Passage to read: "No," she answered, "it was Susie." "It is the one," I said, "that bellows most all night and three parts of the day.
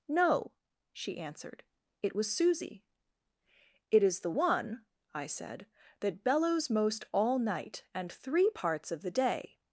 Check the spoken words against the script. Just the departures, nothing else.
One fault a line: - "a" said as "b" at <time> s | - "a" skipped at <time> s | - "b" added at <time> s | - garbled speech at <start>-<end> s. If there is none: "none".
none